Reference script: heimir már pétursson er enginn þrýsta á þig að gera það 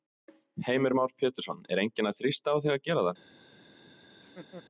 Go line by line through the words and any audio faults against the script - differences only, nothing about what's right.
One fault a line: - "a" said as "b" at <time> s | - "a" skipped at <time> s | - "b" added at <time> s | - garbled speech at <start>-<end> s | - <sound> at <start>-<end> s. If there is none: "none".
- "að" added at 2.1 s
- laugh at 4.1-4.6 s